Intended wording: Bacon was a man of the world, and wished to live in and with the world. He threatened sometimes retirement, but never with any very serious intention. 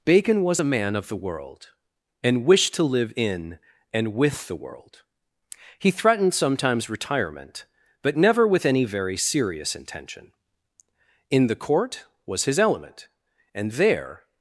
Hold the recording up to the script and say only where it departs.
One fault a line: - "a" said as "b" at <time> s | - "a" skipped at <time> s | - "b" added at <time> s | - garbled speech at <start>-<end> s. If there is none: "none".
- "In the Court was his element and there" added at 11.3 s